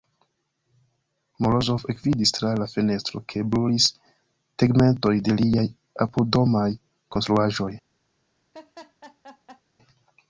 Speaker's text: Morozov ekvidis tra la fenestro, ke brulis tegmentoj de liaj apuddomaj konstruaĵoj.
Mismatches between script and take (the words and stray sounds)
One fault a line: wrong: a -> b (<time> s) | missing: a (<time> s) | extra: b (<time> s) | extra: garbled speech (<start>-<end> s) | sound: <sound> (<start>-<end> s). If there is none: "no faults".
sound: laugh (8.5-9.6 s)